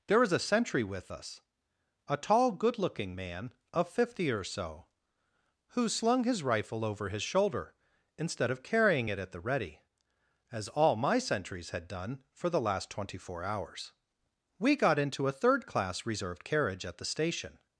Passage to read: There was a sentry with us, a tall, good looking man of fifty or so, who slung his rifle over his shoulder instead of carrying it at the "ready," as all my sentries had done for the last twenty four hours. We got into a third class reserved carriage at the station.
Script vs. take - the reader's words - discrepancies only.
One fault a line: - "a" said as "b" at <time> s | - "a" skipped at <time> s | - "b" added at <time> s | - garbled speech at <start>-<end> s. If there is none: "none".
none